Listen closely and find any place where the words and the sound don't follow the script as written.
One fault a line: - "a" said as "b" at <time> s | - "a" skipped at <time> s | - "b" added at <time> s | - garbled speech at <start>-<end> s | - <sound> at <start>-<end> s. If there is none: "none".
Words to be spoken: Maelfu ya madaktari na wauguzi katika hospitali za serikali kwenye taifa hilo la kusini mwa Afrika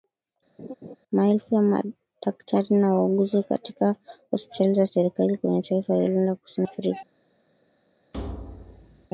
- laugh at 0.6-1.0 s
- "mwa" skipped at 6.7 s
- thud at 8.1-9.1 s